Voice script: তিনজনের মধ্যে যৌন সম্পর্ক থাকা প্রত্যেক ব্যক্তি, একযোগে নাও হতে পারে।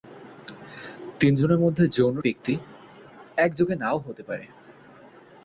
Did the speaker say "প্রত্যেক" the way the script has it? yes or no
no